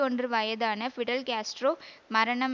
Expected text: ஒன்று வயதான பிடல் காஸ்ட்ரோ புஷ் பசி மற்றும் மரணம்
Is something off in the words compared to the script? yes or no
yes